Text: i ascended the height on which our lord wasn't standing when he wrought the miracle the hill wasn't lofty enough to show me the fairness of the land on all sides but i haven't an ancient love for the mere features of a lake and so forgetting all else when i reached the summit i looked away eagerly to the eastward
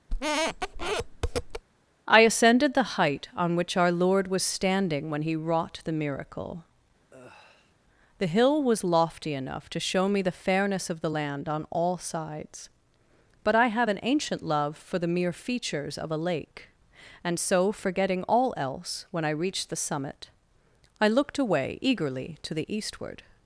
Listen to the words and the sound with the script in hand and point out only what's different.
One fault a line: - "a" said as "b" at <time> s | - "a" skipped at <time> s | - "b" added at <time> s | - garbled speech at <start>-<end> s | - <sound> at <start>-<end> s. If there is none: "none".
- squeak at 0.1-1.6 s
- "wasn't" said as "was" at 4.3 s
- sigh at 7.1-7.7 s
- "wasn't" said as "was" at 8.6 s
- "haven't" said as "have" at 13.7 s